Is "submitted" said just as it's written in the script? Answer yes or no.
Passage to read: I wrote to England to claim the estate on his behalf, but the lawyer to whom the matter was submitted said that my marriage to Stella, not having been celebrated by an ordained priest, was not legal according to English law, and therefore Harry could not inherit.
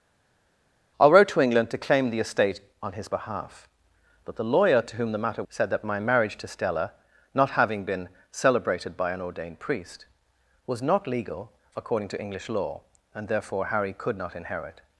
no